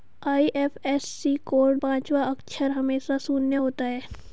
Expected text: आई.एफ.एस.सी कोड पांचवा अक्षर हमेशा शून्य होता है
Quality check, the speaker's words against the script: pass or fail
pass